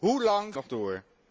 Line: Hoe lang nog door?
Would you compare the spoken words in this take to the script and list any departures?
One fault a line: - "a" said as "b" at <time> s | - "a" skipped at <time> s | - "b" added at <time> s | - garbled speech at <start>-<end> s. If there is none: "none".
none